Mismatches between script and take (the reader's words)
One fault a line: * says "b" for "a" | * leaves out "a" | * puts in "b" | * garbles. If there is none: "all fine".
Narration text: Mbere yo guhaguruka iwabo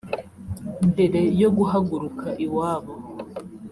all fine